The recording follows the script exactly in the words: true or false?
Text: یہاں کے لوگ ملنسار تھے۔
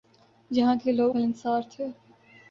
true